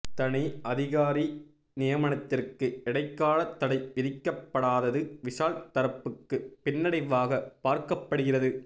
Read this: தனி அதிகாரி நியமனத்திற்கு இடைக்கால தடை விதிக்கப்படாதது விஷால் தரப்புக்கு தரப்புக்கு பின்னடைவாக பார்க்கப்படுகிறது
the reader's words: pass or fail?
fail